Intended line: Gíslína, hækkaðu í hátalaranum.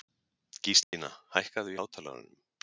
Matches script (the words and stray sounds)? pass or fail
fail